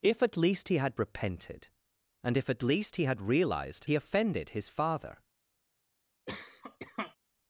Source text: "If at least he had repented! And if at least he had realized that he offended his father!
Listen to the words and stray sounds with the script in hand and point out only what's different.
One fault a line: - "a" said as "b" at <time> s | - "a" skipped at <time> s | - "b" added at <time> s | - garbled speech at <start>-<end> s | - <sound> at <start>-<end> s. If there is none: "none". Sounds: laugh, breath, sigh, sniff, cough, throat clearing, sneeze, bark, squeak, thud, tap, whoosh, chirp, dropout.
- "that" skipped at 3.9 s
- cough at 6.3-7.2 s